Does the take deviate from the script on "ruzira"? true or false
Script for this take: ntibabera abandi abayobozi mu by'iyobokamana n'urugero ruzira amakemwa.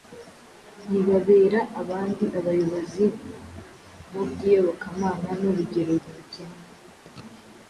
true